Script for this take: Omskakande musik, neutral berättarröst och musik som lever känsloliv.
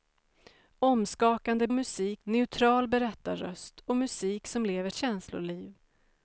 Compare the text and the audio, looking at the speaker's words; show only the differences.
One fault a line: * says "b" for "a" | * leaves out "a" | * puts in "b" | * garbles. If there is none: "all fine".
all fine